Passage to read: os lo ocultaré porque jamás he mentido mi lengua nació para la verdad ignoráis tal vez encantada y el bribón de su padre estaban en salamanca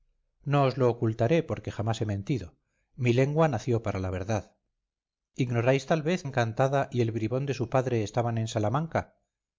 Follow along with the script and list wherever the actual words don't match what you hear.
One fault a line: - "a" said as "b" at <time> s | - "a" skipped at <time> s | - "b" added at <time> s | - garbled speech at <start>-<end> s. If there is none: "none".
none